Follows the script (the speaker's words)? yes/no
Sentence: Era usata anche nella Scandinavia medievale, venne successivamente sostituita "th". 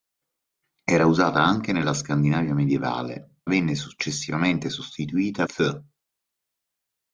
yes